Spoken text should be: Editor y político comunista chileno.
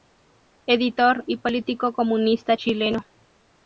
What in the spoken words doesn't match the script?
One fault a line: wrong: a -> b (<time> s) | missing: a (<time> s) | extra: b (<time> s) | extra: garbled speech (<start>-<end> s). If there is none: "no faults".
no faults